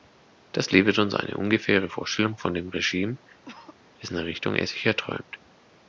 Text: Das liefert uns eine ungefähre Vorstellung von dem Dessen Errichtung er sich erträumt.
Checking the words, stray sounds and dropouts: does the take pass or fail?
fail